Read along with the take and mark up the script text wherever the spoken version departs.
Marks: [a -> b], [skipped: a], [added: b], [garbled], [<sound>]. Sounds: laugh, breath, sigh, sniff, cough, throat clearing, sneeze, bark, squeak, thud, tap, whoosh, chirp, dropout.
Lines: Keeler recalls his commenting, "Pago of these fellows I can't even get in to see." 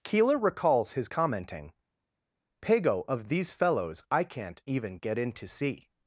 Keeler recalls his commenting, "Pago of these fellows I can't even get in to see."